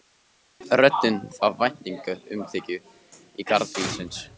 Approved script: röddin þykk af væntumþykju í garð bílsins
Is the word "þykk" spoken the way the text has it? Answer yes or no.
no